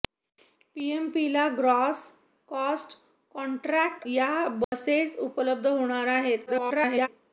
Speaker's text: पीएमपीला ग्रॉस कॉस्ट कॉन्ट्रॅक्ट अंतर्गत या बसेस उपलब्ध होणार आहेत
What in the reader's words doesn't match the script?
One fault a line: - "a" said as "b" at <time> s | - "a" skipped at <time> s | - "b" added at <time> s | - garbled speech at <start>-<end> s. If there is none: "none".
- "अंतर्गत" skipped at 4.0 s
- garbled speech at 6.5-7.1 s